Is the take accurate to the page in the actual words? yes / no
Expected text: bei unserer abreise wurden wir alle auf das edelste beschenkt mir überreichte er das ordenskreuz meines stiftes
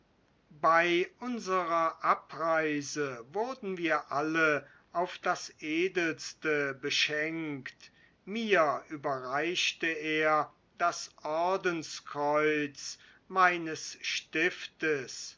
yes